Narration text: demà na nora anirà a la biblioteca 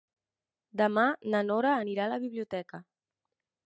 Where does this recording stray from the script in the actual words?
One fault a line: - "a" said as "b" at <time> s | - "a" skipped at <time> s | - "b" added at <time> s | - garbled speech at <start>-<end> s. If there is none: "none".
none